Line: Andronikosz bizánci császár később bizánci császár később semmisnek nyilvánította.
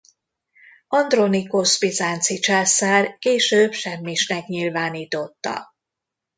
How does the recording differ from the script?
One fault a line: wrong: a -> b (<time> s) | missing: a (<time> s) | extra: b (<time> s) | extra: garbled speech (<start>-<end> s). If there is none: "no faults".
missing: bizánci császár később (3.7 s)